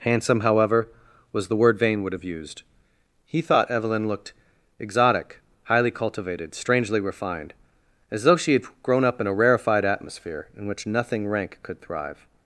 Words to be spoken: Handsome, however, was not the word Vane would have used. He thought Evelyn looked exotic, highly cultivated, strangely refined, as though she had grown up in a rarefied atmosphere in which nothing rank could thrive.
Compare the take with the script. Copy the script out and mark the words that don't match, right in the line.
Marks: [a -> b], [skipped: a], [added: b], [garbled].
Handsome, however, was [skipped: not] the word Vane would have used. He thought Evelyn looked exotic, highly cultivated, strangely refined, as though she had grown up in a rarefied atmosphere in which nothing rank could thrive.